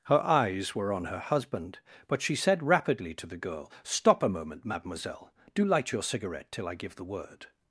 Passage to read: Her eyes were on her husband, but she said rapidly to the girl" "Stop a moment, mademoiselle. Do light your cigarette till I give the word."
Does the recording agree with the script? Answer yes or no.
yes